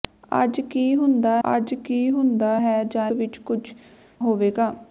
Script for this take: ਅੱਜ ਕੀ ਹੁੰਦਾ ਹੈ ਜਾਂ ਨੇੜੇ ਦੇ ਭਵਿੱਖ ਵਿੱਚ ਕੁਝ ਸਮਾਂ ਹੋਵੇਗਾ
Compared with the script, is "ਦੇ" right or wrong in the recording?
wrong